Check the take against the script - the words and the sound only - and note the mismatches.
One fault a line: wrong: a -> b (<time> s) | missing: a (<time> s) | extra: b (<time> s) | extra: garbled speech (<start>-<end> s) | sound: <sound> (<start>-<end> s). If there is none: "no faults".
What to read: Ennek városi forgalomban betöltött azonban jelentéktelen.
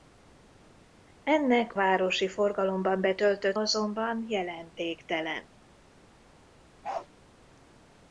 sound: bark (6.8-7.1 s)